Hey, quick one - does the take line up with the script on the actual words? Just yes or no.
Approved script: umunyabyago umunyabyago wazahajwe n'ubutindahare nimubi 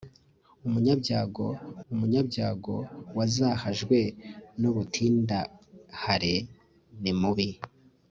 yes